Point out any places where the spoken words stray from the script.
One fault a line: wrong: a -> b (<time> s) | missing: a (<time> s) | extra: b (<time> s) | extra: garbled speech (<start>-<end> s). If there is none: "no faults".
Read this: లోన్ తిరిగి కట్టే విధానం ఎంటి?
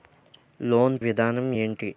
missing: తిరిగి కట్టే (1.0 s)